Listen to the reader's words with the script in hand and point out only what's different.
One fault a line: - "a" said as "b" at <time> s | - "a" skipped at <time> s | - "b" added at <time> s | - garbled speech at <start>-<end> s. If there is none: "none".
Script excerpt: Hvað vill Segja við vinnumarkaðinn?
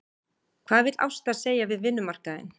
- "Ásta" added at 1.1 s